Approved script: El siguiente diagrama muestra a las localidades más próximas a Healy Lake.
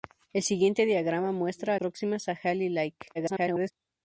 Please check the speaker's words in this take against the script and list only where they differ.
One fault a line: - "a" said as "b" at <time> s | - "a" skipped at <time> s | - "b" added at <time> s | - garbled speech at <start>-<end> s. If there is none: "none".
- "las localidades más" skipped at 1.8 s
- garbled speech at 3.1-3.7 s